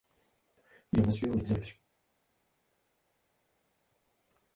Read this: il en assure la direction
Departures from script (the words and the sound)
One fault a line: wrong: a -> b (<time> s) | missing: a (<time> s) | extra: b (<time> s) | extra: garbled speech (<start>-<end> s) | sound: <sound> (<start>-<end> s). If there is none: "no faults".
no faults